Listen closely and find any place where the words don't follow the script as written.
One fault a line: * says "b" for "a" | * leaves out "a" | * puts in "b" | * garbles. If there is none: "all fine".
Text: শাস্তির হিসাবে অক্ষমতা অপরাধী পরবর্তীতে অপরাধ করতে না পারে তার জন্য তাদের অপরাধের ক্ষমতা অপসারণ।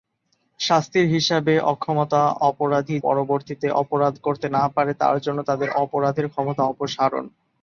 all fine